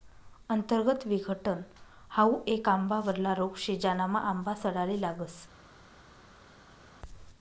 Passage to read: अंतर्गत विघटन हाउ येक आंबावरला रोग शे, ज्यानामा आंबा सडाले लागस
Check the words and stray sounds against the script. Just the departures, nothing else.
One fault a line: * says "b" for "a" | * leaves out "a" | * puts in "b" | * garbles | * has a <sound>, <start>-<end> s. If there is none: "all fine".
all fine